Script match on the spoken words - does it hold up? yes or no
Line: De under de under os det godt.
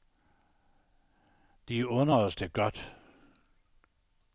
no